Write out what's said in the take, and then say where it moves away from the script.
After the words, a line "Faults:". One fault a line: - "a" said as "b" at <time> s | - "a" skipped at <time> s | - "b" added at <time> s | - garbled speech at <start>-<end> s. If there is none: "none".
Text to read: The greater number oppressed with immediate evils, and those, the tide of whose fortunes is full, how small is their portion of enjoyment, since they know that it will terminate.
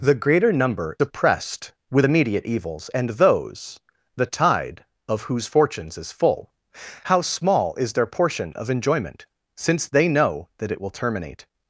The greater number oppressed with immediate evils, and those, the tide of whose fortunes is full, how small is their portion of enjoyment, since they know that it will terminate.
Faults:
none